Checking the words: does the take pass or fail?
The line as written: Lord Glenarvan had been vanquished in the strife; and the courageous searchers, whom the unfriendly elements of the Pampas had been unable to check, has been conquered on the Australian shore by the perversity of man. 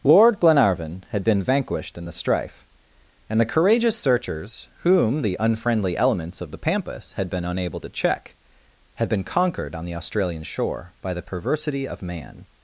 fail